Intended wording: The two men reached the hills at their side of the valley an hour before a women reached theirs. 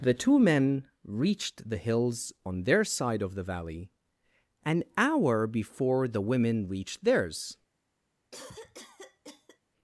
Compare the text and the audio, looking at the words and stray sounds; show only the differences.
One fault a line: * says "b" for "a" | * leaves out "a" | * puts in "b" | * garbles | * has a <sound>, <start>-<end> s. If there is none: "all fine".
* says "on" for "at"
* says "the" for "a"
* has a cough, 8.3-9.6 s